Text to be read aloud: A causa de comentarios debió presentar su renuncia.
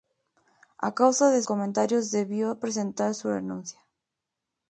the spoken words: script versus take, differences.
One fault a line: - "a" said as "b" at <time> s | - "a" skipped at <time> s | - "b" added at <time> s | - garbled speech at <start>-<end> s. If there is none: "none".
none